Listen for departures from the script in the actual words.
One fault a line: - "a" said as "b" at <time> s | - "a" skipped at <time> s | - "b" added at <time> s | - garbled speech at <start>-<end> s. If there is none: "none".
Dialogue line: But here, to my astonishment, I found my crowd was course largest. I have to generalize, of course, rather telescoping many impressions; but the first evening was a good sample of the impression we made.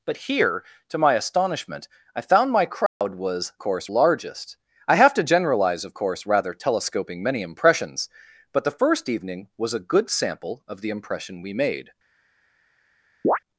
none